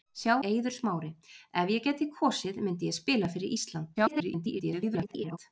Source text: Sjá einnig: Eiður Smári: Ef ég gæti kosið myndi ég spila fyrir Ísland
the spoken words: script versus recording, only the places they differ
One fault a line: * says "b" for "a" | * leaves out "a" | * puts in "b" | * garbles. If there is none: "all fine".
* leaves out "einnig"
* garbles